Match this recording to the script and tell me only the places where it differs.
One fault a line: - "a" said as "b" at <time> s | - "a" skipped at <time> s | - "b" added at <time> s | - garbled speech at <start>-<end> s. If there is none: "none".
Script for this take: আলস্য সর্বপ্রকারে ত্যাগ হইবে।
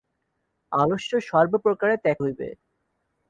none